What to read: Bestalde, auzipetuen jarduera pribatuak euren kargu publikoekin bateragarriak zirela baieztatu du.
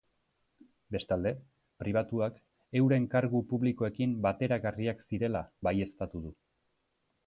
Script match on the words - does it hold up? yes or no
no